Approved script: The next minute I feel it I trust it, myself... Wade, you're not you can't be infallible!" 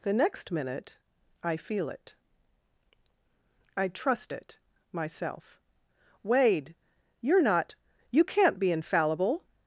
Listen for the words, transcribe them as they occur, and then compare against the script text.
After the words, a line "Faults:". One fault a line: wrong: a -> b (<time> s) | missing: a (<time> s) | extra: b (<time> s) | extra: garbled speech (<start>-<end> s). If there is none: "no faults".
The next minute I feel it I trust it, myself... Wade, you're not you can't be infallible!"
Faults:
no faults